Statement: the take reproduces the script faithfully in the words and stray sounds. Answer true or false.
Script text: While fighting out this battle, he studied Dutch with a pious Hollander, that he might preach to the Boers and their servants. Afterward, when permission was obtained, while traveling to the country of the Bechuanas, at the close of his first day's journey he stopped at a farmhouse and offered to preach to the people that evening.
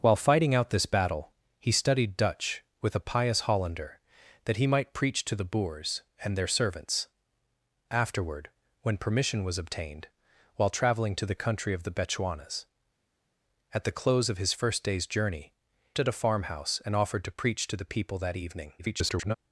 false